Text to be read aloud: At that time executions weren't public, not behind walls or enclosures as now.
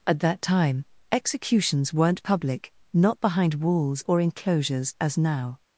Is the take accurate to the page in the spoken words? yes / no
yes